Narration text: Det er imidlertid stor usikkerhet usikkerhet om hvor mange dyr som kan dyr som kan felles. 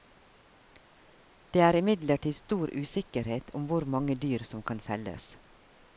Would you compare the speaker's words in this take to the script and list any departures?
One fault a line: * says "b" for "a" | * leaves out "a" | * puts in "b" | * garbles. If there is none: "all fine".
* leaves out "usikkerhet"
* leaves out "dyr som kan"